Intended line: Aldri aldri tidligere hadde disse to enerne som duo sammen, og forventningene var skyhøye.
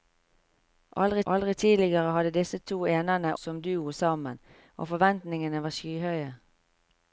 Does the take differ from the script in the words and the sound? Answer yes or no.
no